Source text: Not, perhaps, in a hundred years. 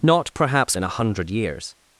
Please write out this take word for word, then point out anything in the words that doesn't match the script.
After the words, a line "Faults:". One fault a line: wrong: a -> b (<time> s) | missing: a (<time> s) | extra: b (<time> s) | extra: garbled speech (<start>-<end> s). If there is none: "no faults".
Not, perhaps, in a hundred years.
Faults:
no faults